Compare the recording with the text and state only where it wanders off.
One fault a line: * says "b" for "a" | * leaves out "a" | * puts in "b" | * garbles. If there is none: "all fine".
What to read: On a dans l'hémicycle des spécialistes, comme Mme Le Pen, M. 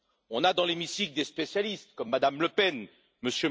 all fine